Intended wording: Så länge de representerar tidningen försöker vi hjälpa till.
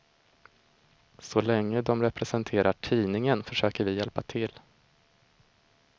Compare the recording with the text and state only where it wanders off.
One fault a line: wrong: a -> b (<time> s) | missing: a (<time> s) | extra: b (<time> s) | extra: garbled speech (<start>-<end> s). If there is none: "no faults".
no faults